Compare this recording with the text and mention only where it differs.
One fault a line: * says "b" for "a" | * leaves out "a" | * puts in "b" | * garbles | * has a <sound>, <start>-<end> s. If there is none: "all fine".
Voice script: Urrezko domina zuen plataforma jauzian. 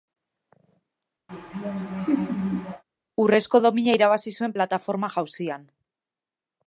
* has a laugh, 1.3-2.8 s
* puts in "irabazi"